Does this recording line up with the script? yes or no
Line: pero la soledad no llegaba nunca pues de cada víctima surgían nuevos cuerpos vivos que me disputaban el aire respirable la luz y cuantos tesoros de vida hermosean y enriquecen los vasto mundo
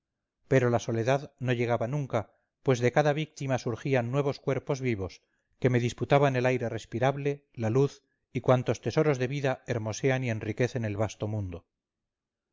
no